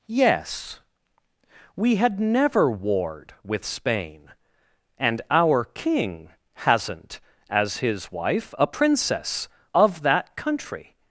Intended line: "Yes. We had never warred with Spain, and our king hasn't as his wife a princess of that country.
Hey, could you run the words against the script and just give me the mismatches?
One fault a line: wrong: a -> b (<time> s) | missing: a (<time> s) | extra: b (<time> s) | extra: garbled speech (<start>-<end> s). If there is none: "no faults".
no faults